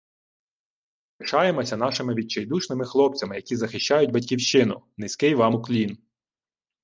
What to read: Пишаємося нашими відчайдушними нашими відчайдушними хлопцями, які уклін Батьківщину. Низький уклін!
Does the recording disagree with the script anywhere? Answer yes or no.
yes